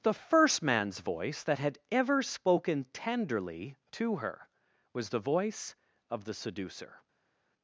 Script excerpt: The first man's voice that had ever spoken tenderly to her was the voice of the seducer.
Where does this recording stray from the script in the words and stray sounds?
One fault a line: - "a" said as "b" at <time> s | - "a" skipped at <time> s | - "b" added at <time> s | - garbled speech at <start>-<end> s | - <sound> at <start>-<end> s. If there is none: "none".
none